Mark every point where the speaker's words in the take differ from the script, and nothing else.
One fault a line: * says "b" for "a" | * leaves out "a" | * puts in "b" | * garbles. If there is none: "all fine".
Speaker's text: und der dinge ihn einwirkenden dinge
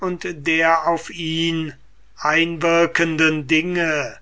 * says "auf" for "dinge"